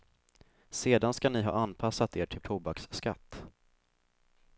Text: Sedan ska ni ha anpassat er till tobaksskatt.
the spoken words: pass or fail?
pass